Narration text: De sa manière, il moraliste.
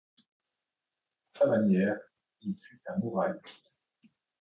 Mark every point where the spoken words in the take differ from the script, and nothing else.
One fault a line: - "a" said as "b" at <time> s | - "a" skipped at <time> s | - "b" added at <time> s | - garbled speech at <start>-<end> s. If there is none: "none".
- "De" said as "À" at 1.3 s
- "fut un" added at 2.5 s